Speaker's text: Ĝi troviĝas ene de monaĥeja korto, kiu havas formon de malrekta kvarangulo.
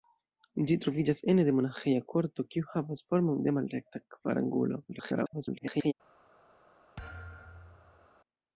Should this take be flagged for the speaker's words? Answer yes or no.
yes